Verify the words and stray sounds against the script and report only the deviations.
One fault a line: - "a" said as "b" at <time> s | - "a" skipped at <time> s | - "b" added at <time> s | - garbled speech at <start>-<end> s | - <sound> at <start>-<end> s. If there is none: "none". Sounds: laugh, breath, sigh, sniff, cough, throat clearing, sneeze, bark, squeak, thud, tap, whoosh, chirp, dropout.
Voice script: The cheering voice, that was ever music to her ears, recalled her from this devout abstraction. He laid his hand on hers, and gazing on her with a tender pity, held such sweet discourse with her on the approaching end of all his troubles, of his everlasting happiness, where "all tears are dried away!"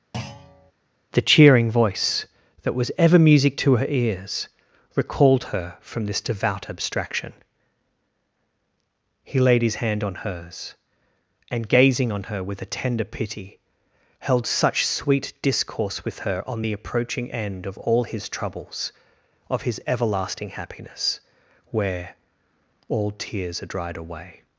- thud at 0.1-0.7 s